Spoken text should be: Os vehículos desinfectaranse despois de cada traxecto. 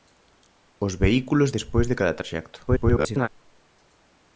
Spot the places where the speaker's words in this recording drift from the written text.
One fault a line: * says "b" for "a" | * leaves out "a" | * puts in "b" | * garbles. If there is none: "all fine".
* leaves out "desinfectaranse"
* garbles